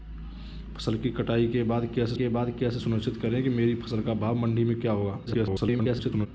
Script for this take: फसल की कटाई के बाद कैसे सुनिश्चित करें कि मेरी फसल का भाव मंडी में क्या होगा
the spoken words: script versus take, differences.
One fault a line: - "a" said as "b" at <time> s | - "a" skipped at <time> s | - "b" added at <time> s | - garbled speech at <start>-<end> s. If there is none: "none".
- "के बाद कैसे" added at 2.1 s
- garbled speech at 5.3-6.3 s